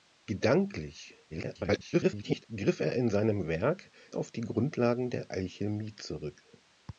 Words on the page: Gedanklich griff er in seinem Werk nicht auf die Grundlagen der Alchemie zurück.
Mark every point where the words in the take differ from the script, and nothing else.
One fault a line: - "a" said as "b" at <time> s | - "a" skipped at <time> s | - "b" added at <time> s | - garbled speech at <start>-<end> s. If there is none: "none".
- garbled speech at 1.3-2.5 s
- "nicht" skipped at 3.9 s